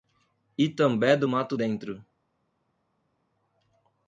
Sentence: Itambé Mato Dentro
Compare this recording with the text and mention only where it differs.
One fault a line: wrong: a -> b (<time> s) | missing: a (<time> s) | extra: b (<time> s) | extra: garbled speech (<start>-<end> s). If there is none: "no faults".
extra: do (1.1 s)